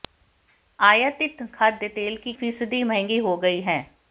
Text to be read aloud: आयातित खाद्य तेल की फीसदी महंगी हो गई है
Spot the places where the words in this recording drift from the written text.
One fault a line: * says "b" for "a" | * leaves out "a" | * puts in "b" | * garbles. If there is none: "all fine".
all fine